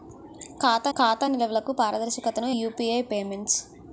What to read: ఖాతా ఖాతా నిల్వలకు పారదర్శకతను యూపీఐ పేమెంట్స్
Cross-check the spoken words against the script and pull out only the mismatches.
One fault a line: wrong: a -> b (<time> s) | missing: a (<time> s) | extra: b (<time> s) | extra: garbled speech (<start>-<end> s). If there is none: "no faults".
no faults